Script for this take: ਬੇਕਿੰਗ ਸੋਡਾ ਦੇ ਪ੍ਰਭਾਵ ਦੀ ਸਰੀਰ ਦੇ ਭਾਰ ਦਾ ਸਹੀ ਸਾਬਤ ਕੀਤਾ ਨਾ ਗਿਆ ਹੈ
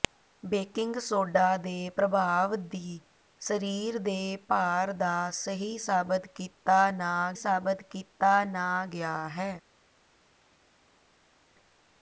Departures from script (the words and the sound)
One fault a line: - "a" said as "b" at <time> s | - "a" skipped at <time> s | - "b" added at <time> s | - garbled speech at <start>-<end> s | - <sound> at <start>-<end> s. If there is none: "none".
- "ਸਾਬਤ ਕੀਤਾ ਨਾ" added at 7.4 s